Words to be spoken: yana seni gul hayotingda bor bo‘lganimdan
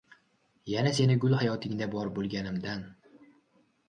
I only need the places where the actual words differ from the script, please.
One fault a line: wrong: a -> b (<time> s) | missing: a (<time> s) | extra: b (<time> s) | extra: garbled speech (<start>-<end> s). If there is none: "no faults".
no faults